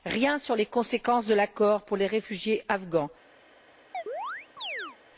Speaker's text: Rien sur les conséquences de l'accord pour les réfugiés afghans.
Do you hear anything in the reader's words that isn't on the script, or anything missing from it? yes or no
no